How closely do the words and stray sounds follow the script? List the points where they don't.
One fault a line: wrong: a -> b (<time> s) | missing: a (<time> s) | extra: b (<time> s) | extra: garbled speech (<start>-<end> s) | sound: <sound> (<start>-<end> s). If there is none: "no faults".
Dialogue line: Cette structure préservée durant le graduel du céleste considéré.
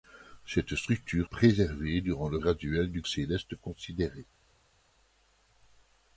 no faults